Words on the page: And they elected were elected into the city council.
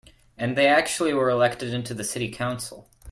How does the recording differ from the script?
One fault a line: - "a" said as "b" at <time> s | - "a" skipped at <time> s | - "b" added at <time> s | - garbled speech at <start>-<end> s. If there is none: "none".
- "elected" said as "actually" at 0.7 s